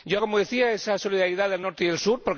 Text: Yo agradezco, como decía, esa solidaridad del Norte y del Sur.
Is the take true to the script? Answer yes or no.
no